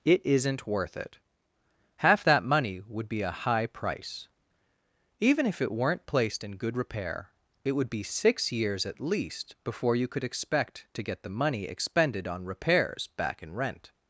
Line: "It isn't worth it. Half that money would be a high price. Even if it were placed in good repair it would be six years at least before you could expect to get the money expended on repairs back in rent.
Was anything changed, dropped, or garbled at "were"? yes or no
yes